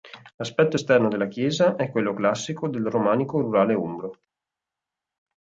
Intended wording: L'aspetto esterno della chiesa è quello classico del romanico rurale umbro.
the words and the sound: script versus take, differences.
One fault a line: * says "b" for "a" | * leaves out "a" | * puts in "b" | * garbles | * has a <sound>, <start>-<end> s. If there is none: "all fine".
all fine